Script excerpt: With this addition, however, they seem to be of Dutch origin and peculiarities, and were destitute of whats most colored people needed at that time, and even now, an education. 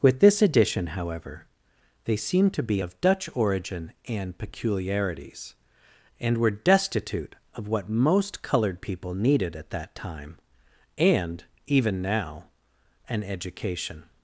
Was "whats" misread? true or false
true